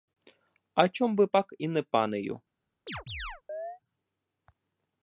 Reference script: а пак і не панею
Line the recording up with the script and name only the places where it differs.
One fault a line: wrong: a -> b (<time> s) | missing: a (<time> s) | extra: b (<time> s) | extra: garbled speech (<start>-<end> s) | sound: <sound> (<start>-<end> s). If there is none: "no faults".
extra: чом би (0.9 s)
sound: chirp (2.9-3.8 s)